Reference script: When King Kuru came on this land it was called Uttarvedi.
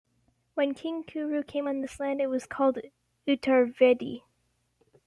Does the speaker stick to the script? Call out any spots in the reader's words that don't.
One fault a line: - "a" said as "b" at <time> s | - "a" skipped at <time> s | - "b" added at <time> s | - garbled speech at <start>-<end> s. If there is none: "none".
none